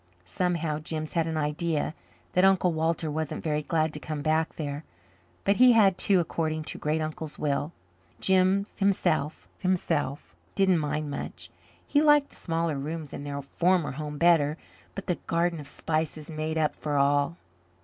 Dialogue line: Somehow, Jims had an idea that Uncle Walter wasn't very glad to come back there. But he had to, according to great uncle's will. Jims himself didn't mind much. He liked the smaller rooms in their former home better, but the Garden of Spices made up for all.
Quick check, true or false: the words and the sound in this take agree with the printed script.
false